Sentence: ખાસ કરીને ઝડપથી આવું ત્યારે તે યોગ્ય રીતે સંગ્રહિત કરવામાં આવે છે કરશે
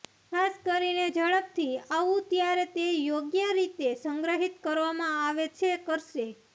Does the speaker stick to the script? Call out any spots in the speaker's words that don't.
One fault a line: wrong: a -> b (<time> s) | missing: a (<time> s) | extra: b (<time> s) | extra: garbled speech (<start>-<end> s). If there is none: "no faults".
no faults